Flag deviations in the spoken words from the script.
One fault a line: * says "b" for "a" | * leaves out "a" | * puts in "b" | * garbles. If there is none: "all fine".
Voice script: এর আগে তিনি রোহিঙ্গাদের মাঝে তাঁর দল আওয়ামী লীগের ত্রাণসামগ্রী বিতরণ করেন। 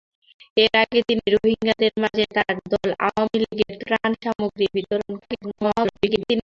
* garbles